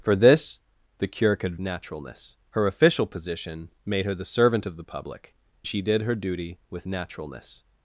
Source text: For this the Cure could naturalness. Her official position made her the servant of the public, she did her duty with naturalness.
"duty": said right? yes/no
yes